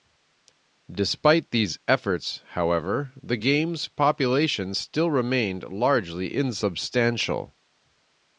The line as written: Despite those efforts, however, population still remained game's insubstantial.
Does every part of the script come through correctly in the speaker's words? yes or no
no